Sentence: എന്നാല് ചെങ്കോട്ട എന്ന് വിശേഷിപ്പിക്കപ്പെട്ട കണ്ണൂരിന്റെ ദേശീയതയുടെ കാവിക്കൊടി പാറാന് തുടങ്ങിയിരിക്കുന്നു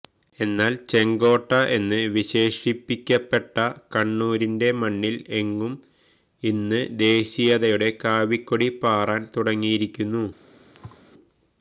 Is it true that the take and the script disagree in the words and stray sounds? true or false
true